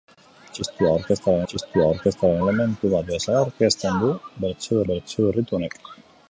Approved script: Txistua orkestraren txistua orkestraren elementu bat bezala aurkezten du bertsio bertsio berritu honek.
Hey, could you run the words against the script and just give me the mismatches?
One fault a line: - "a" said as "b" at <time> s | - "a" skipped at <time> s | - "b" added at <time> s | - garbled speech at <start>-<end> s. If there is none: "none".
none